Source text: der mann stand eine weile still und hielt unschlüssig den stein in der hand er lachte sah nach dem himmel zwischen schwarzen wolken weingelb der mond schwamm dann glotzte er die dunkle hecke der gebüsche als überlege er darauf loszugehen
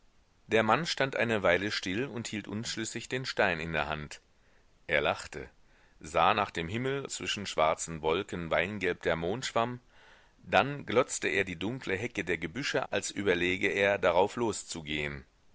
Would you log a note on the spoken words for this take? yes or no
no